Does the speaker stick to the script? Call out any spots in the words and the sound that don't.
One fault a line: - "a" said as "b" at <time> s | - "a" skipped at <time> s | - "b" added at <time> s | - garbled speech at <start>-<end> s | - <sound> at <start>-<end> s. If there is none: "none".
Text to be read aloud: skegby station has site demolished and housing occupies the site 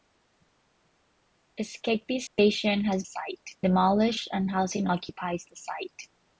- dropout at 2.3-2.4 s